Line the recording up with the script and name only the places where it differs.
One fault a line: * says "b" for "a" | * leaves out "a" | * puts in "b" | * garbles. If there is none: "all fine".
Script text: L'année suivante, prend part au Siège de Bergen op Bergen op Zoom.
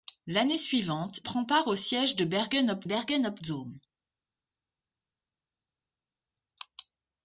all fine